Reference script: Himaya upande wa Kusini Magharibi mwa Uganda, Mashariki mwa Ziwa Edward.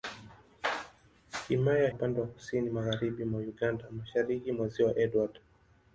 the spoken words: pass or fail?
pass